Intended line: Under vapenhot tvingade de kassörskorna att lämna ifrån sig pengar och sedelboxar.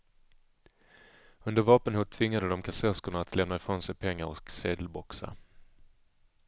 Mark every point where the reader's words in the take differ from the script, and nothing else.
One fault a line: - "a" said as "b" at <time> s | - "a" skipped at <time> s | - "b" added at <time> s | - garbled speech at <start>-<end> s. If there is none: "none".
none